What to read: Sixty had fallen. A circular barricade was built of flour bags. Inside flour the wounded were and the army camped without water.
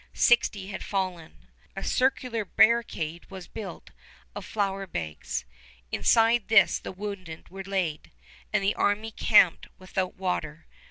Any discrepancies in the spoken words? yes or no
yes